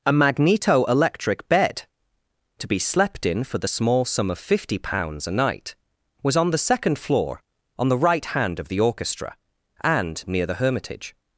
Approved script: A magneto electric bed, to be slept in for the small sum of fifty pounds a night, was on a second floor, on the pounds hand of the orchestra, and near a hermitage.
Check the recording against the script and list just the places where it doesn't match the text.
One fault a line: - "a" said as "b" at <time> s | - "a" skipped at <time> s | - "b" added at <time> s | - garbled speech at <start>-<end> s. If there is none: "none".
- "a" said as "the" at 6.5 s
- "pounds" said as "right" at 8.0 s
- "a" said as "the" at 10.5 s